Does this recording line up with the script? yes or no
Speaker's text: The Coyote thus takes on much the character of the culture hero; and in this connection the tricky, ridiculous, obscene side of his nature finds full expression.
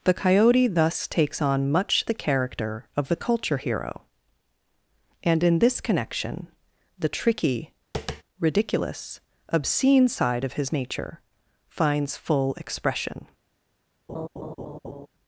yes